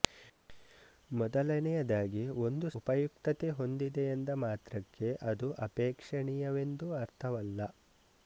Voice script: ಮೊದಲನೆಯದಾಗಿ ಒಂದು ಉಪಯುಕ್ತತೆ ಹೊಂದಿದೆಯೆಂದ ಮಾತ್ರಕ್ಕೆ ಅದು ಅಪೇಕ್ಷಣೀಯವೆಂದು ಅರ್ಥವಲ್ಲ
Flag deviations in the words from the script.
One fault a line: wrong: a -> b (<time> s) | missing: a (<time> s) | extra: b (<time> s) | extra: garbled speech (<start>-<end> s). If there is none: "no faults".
no faults